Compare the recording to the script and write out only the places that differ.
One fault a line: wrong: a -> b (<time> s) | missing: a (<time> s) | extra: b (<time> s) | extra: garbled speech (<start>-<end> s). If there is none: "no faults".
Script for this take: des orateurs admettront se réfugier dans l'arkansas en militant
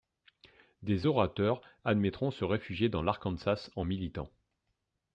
no faults